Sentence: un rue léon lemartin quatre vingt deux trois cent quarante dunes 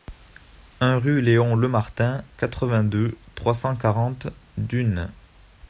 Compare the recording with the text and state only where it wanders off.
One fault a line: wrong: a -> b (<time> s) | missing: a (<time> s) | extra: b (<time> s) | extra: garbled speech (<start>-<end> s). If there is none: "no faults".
no faults